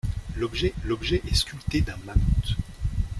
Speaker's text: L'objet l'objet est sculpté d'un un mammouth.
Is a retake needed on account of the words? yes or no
no